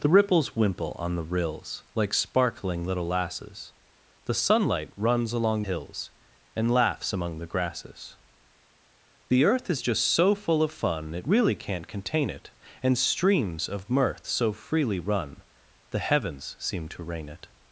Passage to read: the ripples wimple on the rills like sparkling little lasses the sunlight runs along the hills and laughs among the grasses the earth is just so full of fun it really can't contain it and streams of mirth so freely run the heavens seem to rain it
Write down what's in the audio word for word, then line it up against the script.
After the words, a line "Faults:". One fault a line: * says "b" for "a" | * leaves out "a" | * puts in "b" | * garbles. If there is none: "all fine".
the ripples wimple on the rills like sparkling little lasses the sunlight runs along hills and laughs among the grasses the earth is just so full of fun it really can't contain it and streams of mirth so freely run the heavens seem to rain it
Faults:
* leaves out "the"